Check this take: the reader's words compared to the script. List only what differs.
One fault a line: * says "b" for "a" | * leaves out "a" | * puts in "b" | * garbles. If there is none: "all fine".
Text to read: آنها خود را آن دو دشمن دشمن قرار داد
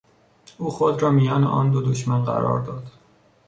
* says "او" for "آنها"
* puts in "میان"
* leaves out "دشمن"